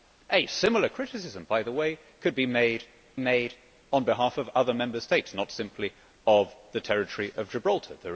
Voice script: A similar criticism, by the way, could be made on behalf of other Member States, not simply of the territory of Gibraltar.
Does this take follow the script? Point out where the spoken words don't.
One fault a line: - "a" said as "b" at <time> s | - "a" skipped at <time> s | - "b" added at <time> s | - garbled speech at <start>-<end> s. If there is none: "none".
- "made" added at 3.2 s